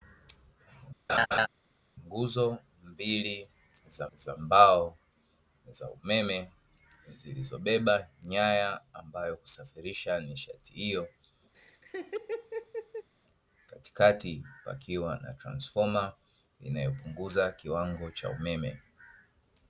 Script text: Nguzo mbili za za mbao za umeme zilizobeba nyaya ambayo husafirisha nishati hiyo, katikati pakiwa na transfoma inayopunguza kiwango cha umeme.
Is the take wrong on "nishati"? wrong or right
right